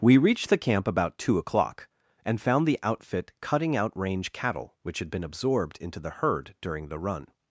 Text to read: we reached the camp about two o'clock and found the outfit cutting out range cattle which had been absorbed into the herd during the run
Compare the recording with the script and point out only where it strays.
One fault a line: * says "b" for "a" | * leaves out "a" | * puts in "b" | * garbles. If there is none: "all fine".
all fine